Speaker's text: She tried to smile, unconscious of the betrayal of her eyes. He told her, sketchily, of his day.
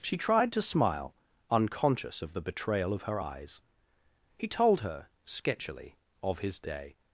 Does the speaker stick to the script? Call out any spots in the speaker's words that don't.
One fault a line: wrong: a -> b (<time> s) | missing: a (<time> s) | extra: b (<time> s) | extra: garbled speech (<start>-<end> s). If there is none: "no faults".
no faults